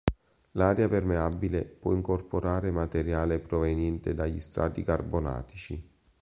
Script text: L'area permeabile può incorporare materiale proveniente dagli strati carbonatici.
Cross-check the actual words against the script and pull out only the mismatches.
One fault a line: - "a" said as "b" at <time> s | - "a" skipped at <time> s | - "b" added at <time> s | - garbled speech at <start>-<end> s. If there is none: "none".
none